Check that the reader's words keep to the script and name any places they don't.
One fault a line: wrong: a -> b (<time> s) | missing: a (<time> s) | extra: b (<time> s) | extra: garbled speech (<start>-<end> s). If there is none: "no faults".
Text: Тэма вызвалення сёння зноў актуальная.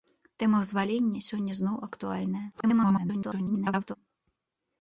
extra: garbled speech (2.5-4.0 s)